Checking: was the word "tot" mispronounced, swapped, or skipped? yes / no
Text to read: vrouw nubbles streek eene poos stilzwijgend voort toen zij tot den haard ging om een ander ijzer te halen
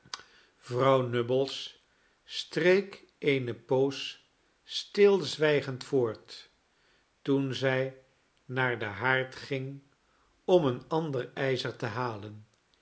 yes